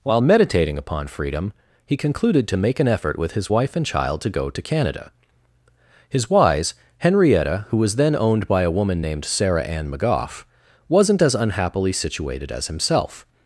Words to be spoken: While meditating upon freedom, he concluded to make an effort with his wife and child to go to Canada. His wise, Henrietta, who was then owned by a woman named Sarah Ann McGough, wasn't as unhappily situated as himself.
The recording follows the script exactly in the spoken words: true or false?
true